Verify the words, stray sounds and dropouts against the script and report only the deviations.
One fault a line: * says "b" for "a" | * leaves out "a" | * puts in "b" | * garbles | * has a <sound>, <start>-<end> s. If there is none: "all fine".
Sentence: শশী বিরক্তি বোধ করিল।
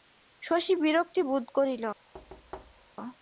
* has a thud, 2.1-3.0 s